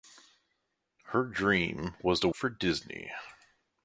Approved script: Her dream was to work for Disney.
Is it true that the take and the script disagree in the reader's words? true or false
true